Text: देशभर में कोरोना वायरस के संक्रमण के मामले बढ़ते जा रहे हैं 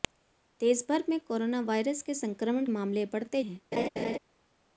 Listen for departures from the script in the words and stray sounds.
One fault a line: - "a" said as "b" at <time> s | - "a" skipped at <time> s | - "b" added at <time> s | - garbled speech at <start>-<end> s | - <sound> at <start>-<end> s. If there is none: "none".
- "के" skipped at 2.6 s
- "जा रहे" skipped at 3.4 s
- laugh at 3.7-4.2 s